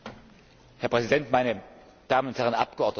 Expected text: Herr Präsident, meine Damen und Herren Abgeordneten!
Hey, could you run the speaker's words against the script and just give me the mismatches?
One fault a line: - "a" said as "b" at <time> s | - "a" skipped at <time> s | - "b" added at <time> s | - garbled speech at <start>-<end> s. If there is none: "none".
none